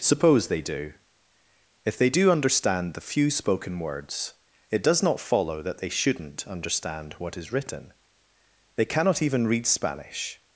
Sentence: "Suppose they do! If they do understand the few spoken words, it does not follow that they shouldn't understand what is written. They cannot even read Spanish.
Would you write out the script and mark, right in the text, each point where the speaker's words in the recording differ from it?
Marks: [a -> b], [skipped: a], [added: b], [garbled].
"Suppose they do! If they do understand the few spoken words, it does not follow that they shouldn't understand what is written. They cannot even read Spanish.